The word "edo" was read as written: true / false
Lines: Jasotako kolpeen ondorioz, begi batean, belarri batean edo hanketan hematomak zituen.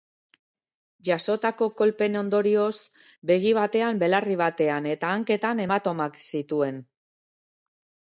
false